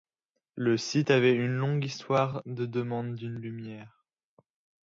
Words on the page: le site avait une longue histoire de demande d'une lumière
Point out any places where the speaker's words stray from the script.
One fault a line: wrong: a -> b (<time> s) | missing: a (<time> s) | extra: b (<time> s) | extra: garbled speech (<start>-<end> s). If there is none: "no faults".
no faults